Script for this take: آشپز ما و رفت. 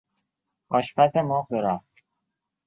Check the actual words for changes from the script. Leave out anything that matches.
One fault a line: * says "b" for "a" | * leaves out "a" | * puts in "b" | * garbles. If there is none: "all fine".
all fine